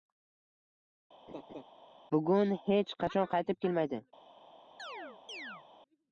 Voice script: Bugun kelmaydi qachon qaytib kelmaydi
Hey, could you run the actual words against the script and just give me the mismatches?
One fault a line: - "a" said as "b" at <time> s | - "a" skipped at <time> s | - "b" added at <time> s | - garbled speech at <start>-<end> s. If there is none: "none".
- "kelmaydi" said as "hech" at 2.7 s